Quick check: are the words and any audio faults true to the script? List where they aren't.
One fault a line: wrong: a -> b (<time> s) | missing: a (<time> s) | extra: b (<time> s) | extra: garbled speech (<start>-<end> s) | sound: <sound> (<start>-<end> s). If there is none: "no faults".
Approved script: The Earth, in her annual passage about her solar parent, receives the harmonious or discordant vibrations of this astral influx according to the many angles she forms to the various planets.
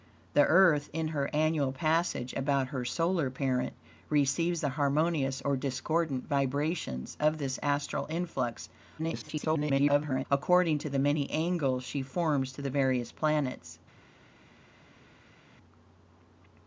extra: garbled speech (9.0-10.3 s)